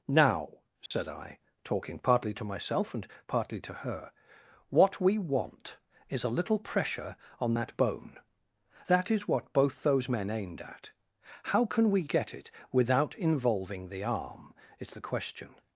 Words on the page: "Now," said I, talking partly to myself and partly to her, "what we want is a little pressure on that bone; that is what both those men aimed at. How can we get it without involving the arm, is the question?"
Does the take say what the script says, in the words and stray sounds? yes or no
no